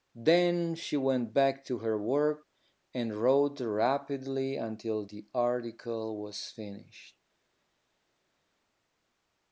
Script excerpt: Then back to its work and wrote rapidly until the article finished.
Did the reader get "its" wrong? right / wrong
wrong